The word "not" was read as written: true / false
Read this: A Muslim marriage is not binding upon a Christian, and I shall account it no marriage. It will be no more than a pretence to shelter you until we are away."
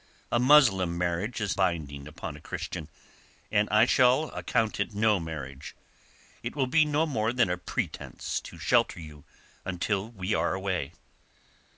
false